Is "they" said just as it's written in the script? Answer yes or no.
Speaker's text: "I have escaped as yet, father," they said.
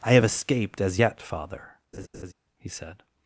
no